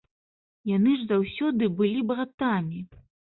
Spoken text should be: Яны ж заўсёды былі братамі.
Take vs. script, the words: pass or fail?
pass